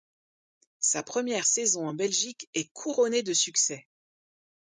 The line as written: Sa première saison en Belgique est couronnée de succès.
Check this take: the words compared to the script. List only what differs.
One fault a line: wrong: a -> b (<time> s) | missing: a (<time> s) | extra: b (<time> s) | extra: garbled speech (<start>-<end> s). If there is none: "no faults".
no faults